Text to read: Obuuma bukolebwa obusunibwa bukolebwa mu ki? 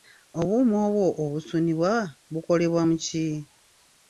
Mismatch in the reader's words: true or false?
true